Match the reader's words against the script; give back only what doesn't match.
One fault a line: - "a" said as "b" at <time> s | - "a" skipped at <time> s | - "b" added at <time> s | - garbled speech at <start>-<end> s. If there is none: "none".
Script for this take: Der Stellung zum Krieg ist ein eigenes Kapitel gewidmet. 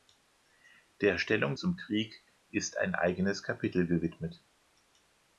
none